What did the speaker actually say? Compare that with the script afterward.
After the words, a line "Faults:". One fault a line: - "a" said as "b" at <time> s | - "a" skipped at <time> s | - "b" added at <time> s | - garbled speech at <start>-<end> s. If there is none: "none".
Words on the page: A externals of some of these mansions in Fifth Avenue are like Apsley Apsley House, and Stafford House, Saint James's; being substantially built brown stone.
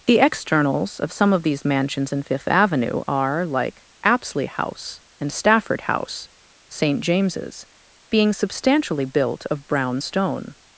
The externals of some of these mansions in Fifth Avenue are like Apsley House, and Stafford House, Saint James's; being substantially built of brown stone.
Faults:
- "A" said as "The" at 0.1 s
- "Apsley" skipped at 4.5 s
- "of" added at 9.5 s